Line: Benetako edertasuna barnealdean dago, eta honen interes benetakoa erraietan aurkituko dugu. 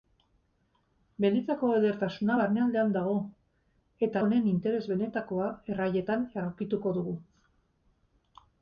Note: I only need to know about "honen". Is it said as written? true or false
true